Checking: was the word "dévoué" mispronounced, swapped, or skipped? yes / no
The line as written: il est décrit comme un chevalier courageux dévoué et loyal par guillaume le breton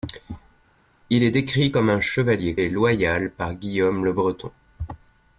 yes